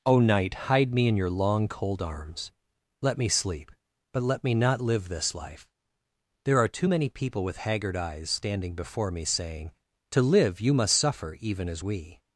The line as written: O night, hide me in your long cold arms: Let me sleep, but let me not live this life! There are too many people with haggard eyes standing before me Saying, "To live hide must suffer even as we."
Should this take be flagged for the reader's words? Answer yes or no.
yes